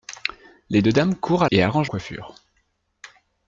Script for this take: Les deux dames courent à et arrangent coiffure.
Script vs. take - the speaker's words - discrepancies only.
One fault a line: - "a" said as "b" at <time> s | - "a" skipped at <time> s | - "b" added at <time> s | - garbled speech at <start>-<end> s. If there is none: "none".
none